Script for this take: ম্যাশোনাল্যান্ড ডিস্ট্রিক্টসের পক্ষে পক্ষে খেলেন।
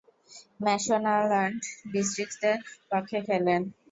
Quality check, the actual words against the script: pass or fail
fail